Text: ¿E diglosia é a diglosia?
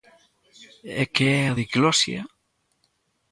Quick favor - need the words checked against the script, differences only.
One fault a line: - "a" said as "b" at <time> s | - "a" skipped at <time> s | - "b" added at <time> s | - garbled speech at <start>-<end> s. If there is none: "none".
- "diglosia" said as "que" at 1.1 s